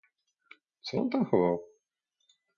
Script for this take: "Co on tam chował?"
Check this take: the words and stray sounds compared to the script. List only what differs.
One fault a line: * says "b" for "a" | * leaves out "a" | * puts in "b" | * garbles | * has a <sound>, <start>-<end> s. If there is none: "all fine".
all fine